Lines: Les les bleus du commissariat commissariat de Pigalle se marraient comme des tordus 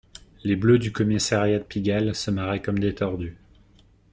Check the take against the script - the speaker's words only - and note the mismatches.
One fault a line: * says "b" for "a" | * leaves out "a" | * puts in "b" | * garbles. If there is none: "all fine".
* leaves out "les"
* leaves out "commissariat"